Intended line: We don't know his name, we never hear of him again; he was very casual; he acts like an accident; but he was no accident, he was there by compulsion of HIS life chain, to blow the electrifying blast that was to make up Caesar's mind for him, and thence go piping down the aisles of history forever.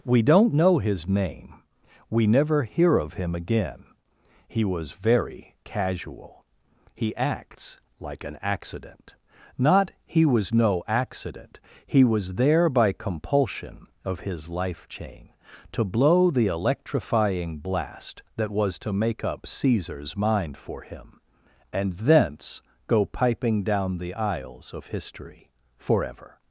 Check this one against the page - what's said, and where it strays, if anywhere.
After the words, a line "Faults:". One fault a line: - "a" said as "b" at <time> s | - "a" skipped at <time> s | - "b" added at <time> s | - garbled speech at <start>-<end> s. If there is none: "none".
We don't know his name, we never hear of him again; he was very casual; he acts like an accident; not he was no accident, he was there by compulsion of HIS life chain, to blow the electrifying blast that was to make up Caesar's mind for him, and thence go piping down the aisles of history forever.
Faults:
- "but" said as "not" at 9.6 s